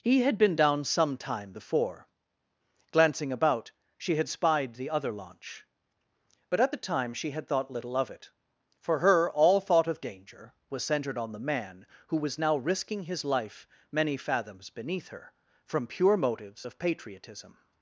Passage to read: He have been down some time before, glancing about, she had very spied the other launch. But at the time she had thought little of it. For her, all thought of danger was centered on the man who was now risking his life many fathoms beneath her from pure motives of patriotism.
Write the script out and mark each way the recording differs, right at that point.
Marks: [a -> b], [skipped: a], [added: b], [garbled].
He [have -> had] been down some time before, glancing about, she had [skipped: very] spied the other launch. But at the time she had thought little of it. For her, all thought of danger was centered on the man who was now risking his life many fathoms beneath her from pure motives of patriotism.